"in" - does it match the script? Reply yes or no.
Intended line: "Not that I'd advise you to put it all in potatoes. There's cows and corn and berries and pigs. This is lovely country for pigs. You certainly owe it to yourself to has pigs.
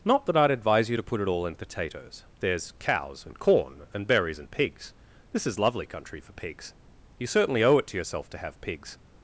yes